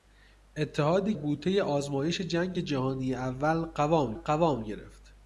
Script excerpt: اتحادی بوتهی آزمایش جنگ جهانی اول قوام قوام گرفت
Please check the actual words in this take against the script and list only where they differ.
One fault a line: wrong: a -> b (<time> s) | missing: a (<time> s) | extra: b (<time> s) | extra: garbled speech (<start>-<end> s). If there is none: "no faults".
no faults